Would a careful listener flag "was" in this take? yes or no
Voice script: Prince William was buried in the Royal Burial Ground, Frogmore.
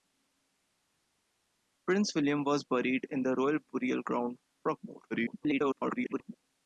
no